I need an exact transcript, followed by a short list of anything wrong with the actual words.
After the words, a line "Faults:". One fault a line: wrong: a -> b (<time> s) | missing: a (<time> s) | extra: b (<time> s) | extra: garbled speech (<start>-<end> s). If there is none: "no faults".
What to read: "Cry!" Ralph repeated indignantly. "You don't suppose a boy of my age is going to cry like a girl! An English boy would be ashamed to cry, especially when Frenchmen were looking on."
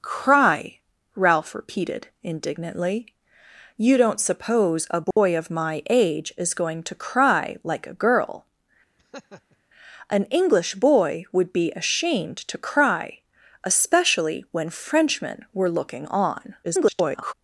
"Cry!" Ralph repeated indignantly. "You don't suppose a boy of my age is going to cry like a girl! An English boy would be ashamed to cry, especially when Frenchmen were looking on." [garbled]
Faults:
extra: garbled speech (16.6-17.3 s)